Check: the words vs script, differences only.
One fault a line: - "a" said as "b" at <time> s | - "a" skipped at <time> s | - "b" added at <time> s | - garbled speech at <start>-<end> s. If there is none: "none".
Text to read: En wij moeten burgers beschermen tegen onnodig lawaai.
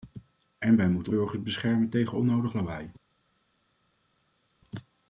none